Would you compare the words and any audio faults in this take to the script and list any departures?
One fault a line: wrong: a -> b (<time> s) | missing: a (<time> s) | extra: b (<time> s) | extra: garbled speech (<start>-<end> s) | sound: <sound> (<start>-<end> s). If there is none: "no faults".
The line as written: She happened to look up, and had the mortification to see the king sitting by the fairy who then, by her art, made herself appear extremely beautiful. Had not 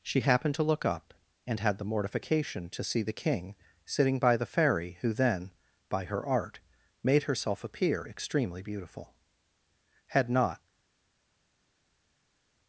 no faults